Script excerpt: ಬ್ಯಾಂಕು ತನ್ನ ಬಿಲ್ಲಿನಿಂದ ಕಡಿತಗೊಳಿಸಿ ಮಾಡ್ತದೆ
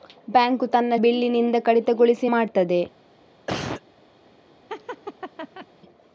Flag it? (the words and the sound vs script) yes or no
yes